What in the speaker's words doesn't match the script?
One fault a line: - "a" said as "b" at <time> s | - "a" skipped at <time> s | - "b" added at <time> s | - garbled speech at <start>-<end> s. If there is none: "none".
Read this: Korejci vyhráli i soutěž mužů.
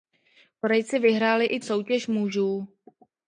none